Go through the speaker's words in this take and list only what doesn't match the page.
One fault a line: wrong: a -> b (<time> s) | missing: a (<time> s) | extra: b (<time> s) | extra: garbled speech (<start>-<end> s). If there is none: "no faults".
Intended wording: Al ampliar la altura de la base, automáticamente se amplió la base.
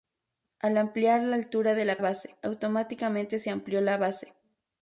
no faults